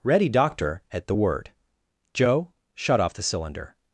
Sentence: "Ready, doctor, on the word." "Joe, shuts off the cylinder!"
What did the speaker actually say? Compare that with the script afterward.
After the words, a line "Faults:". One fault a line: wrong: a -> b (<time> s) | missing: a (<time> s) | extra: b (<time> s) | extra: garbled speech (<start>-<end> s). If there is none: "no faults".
"Ready, doctor, at the word." "Joe, shut off the cylinder!"
Faults:
wrong: on -> at (0.9 s)
wrong: shuts -> shut (2.7 s)